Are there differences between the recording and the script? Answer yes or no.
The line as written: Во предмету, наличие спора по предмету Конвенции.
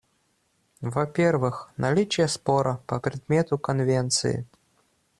yes